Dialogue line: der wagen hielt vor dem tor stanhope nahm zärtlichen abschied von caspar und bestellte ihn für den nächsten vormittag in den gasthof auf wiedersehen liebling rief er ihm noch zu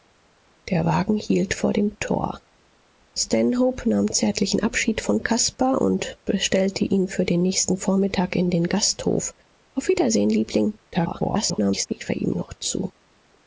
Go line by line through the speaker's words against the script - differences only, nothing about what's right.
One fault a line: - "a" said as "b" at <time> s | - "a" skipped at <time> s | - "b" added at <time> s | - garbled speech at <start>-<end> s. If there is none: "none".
- garbled speech at 10.9-11.9 s